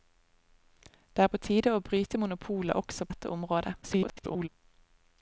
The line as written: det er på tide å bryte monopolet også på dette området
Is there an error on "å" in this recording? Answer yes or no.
no